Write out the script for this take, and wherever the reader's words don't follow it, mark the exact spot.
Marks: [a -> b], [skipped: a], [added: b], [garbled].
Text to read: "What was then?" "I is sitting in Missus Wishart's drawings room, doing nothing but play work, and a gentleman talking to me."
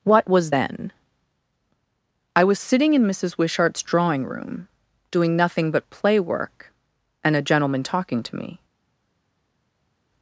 "What was then?" "I [is -> was] sitting in Missus Wishart's [drawings -> drawing] room, doing nothing but play work, and a gentleman talking to me."